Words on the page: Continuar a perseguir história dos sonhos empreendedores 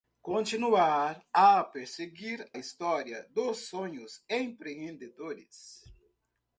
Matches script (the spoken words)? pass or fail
pass